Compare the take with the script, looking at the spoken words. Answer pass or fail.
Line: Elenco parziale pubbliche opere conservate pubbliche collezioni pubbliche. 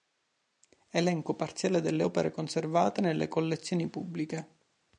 fail